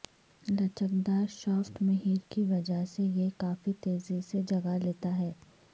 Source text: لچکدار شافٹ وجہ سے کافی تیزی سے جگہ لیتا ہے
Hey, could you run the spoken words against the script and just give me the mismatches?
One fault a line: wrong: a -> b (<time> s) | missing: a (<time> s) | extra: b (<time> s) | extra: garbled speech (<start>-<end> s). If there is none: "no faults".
extra: مہر کی (1.8 s)
extra: یہ (3.0 s)